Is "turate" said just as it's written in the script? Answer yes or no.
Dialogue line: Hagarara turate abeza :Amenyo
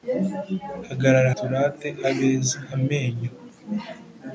yes